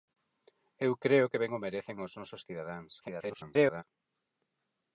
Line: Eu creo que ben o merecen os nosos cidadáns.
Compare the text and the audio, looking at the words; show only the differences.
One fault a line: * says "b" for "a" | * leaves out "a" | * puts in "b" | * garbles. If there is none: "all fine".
* garbles